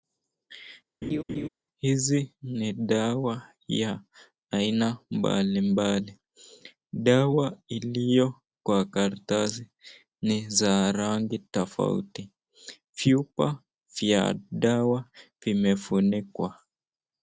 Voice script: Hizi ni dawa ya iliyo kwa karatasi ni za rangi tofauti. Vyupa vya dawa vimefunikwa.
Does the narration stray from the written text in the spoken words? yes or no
yes